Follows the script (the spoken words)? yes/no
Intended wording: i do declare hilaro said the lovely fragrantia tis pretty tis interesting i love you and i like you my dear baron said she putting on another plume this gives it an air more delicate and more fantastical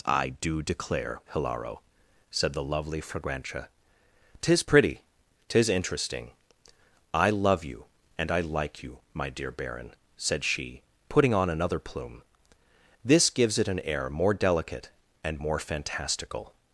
yes